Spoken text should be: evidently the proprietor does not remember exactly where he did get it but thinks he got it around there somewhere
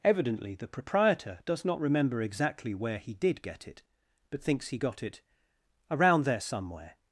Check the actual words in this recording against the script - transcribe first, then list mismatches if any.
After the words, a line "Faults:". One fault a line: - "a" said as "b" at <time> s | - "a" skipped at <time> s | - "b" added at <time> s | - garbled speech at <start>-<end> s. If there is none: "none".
evidently the proprietor does not remember exactly where he did get it but thinks he got it around there somewhere
Faults:
none